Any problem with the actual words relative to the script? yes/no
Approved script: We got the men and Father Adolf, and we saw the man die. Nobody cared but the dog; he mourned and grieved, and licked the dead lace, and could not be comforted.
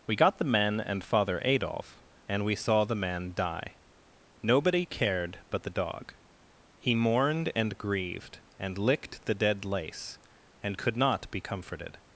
no